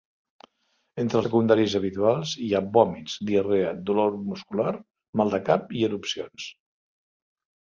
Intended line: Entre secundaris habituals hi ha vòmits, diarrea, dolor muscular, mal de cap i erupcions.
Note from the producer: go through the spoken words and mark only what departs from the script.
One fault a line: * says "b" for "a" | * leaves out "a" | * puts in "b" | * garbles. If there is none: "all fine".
all fine